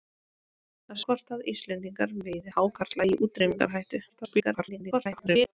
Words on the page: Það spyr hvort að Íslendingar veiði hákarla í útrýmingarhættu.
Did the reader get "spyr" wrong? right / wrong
wrong